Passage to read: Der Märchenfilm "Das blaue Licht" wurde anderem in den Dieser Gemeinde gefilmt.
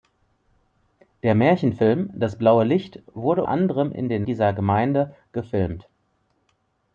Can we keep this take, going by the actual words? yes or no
yes